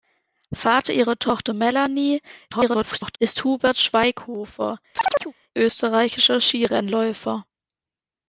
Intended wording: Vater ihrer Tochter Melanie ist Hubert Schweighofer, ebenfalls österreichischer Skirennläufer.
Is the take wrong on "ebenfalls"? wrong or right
wrong